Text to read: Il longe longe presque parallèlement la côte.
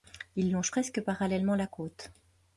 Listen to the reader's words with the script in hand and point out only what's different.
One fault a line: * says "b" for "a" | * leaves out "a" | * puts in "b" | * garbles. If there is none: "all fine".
* leaves out "longe"